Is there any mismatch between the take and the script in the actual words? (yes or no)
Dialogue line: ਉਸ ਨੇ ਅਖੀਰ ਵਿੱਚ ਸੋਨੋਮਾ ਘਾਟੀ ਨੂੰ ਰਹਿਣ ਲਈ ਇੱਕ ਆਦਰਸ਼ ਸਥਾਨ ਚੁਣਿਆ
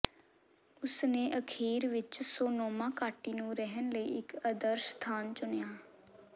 no